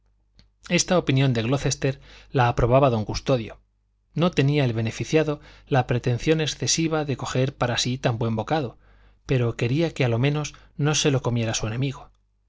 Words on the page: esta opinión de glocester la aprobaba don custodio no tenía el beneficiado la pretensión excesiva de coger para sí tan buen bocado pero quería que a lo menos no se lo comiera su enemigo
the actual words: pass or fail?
pass